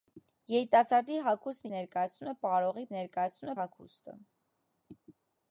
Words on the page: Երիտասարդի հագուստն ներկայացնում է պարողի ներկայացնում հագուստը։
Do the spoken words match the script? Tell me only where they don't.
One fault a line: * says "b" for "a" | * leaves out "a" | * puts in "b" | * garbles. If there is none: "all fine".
all fine